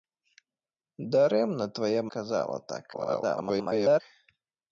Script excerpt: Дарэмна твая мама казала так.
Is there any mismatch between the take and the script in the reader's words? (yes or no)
yes